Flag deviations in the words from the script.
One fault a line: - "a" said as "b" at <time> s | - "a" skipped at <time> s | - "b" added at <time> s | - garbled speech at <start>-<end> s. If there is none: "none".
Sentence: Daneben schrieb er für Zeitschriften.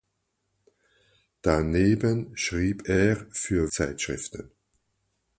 none